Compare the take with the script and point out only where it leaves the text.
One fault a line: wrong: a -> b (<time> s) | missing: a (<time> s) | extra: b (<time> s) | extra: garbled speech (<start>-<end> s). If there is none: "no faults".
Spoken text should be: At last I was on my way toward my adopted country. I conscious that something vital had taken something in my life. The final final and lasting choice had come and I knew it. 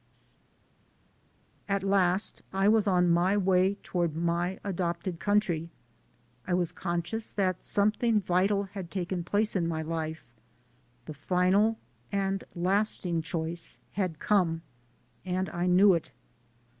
extra: was (6.5 s)
wrong: something -> place (9.2 s)
missing: final (11.8 s)